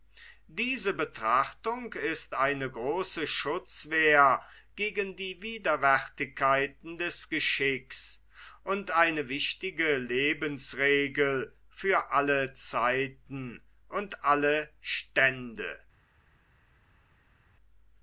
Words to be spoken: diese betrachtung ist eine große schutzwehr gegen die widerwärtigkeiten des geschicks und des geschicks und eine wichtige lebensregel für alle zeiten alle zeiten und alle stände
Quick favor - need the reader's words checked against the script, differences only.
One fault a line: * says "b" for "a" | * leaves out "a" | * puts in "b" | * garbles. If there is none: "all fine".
* leaves out "des geschicks und"
* leaves out "alle zeiten"